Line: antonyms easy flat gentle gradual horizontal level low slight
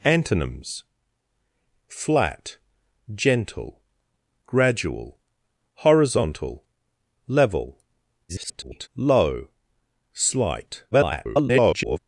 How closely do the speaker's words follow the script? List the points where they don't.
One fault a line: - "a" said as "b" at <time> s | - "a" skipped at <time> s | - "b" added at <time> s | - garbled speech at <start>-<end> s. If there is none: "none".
- "easy" skipped at 0.8 s
- garbled speech at 8.3-8.9 s
- garbled speech at 10.9-12.0 s